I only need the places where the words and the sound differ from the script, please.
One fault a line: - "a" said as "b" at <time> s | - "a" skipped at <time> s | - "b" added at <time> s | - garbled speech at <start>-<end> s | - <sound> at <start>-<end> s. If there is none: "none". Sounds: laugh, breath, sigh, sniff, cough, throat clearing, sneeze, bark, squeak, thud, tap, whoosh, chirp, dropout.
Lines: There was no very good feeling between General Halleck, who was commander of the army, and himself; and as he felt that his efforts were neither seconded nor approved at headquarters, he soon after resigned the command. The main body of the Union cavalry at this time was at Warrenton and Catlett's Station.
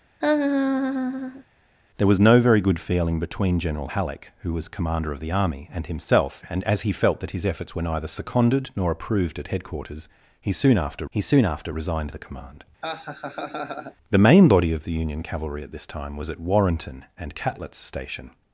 - laugh at 0.2-1.4 s
- "he soon after" added at 11.1 s
- laugh at 12.8-14.0 s